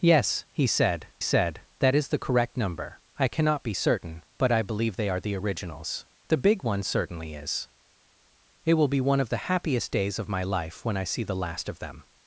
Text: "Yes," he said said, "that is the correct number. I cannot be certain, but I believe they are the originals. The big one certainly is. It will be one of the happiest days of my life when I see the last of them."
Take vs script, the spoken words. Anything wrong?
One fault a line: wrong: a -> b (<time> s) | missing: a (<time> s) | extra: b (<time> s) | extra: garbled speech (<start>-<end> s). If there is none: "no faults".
no faults